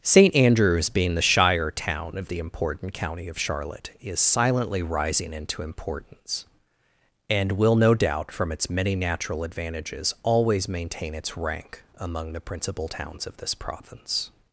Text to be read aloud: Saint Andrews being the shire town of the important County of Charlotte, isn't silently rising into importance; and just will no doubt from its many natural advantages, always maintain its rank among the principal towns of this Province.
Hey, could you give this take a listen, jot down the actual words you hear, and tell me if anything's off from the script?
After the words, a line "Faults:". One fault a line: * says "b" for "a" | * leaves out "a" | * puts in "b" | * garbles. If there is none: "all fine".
Saint Andrews being the shire town of the important County of Charlotte, is silently rising into importance; and will no doubt from its many natural advantages, always maintain its rank among the principal towns of this Province.
Faults:
* says "is" for "isn't"
* leaves out "just"